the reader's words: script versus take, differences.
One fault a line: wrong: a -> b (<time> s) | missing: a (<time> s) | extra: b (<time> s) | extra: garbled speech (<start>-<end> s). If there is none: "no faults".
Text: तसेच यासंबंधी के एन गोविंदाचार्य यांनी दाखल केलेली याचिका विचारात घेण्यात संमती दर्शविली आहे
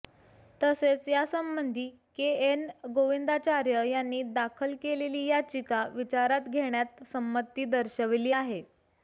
no faults